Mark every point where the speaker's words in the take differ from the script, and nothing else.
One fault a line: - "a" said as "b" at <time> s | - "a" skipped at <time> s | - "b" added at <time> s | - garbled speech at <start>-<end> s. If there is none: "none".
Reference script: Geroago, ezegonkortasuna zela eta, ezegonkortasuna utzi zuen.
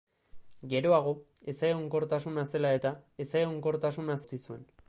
none